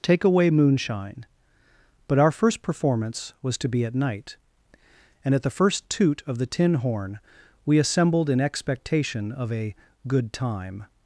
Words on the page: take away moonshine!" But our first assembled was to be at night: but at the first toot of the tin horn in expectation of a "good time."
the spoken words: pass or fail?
fail